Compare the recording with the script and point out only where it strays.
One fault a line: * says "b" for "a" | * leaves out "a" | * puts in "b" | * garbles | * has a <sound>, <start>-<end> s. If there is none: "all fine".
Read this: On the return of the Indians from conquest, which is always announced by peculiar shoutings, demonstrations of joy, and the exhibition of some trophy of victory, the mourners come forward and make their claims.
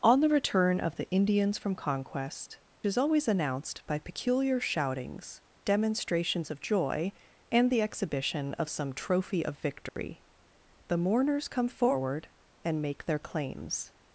* leaves out "which"
* has a dropout, 9.9-10.0 s